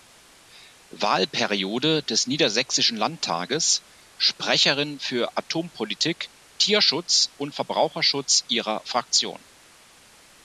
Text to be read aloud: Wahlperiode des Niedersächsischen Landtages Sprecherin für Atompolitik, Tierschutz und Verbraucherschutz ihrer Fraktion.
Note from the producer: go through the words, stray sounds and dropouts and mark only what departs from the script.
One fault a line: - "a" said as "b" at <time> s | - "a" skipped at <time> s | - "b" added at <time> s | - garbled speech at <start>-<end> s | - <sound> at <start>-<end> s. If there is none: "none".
none